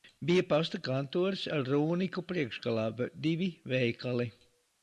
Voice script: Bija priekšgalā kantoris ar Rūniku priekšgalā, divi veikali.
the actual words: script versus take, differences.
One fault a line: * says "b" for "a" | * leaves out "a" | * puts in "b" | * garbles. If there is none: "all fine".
* says "pasta" for "priekšgalā"